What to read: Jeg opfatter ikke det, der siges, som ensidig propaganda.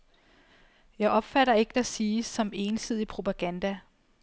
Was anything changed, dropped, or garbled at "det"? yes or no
yes